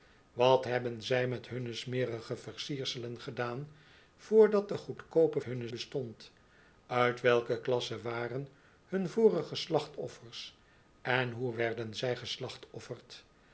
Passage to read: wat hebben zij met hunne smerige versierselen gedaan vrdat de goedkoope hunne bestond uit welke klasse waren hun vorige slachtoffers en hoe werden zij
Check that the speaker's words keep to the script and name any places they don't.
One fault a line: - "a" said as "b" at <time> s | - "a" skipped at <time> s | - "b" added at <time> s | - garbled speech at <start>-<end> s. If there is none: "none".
none